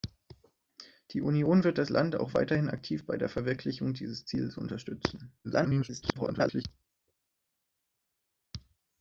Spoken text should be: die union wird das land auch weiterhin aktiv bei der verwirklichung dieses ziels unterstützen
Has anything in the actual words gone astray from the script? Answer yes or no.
yes